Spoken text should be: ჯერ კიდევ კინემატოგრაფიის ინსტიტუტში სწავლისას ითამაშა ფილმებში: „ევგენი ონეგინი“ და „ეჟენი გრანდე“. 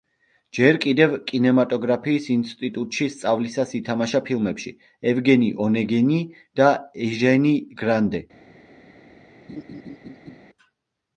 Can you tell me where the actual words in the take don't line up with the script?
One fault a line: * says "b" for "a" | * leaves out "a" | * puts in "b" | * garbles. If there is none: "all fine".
all fine